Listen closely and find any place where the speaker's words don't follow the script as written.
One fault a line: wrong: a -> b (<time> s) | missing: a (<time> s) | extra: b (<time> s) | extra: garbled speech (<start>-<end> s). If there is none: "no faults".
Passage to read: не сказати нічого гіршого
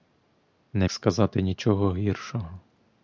no faults